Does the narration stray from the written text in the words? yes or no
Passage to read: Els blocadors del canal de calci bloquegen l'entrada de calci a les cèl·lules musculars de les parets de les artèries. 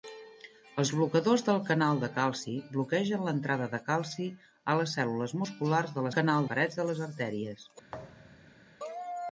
yes